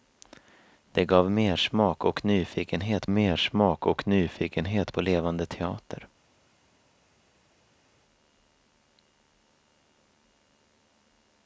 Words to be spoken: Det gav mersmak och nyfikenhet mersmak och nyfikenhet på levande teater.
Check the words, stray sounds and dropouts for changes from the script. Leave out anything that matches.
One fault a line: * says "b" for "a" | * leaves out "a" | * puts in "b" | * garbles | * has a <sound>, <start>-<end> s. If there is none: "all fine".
all fine